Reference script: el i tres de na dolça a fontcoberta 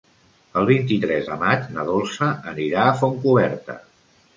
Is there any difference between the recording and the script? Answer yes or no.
yes